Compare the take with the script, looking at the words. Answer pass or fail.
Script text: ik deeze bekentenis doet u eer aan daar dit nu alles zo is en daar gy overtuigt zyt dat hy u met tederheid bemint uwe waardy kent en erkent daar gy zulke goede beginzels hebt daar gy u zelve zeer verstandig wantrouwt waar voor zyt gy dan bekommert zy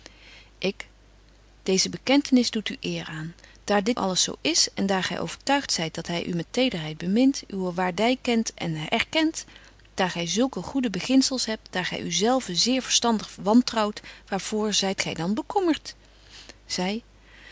fail